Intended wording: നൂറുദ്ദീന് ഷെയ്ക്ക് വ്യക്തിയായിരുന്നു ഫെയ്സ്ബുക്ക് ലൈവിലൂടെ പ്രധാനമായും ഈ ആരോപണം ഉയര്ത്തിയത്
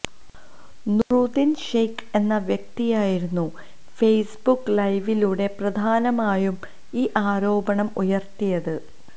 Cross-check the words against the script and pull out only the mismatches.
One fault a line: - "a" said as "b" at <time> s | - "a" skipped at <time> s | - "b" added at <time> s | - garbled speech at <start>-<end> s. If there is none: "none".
- "എന്ന" added at 2.1 s